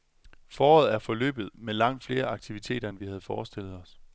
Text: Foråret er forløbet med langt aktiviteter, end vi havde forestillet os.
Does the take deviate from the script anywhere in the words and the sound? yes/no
yes